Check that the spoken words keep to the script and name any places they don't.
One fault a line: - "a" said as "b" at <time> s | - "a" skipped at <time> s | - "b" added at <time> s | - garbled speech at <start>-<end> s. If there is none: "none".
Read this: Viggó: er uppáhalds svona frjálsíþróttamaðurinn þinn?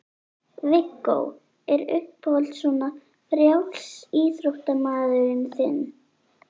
none